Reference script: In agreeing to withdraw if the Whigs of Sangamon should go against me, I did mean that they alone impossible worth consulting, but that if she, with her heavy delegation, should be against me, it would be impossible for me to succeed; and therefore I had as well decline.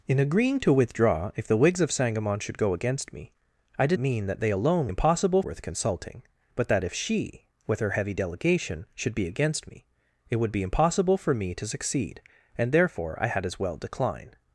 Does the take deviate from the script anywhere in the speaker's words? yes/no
no